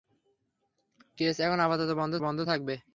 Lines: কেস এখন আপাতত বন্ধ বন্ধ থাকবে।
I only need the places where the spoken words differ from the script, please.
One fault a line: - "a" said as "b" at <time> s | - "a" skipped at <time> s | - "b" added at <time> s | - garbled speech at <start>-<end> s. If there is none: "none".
none